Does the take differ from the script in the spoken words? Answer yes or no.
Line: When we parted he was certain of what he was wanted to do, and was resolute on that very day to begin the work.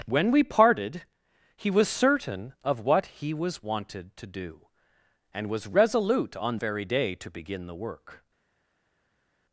yes